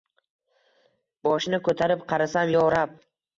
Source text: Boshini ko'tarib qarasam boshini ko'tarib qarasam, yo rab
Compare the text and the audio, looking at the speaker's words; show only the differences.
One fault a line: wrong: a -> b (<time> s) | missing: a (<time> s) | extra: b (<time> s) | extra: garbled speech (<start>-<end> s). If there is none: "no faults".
missing: boshini ko'tarib qarasam (2.5 s)